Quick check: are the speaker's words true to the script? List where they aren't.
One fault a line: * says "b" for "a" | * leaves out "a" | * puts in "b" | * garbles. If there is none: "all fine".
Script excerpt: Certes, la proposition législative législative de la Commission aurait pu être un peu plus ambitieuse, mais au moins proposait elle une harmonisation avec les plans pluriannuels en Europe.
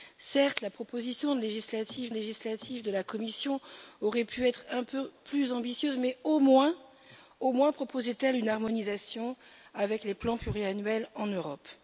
all fine